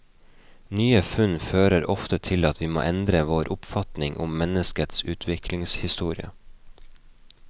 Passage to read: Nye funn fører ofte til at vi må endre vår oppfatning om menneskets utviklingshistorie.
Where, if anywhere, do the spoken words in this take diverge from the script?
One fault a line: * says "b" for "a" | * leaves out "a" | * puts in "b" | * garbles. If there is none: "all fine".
all fine